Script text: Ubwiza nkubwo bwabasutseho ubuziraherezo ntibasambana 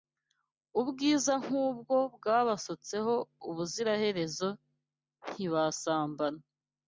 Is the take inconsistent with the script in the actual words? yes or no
no